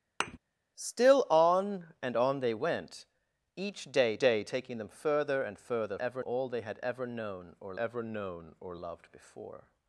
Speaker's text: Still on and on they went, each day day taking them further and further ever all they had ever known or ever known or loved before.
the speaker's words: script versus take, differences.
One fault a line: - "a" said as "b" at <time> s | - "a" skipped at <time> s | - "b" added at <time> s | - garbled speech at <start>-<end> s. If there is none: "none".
none